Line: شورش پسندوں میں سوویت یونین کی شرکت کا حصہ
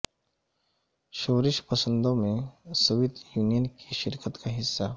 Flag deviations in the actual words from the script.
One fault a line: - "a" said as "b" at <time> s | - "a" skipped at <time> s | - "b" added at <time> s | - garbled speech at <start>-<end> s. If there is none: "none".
none